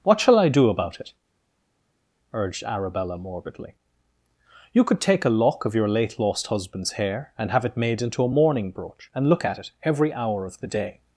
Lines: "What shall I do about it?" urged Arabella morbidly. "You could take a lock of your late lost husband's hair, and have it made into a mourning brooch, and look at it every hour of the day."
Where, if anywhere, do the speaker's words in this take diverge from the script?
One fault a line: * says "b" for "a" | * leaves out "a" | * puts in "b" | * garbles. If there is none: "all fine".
all fine